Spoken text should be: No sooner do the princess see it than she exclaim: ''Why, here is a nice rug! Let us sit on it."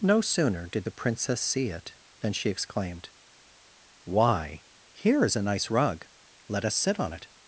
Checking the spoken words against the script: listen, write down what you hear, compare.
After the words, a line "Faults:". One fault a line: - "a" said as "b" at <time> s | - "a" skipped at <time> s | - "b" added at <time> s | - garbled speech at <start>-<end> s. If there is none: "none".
No sooner did the princess see it than she exclaimed: ''Why, here is a nice rug! Let us sit on it."
Faults:
- "do" said as "did" at 0.7 s
- "exclaim" said as "exclaimed" at 2.5 s